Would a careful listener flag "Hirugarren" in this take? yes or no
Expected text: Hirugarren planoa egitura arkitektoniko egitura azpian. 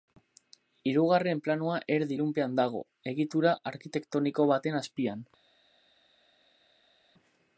no